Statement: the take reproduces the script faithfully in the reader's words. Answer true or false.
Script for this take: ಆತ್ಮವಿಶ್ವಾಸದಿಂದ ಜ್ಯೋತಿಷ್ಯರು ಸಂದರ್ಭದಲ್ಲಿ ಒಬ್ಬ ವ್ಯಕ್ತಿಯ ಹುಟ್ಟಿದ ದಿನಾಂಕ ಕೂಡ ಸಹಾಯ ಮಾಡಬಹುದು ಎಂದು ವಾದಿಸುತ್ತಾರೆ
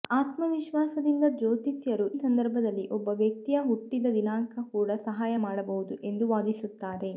true